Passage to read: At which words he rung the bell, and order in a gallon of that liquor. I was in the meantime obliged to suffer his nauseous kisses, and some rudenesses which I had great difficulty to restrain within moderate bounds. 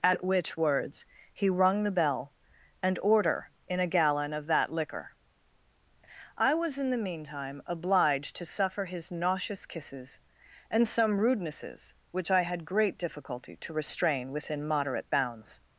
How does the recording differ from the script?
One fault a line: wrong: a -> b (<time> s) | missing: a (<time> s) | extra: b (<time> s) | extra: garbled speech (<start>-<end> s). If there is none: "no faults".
no faults